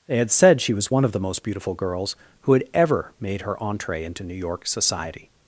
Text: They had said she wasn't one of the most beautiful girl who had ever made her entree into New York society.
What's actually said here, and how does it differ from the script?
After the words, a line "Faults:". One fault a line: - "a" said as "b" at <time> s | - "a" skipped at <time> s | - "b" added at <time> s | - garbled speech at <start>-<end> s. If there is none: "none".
They had said she was one of the most beautiful girls who had ever made her entree into New York society.
Faults:
- "wasn't" said as "was" at 0.7 s
- "girl" said as "girls" at 1.7 s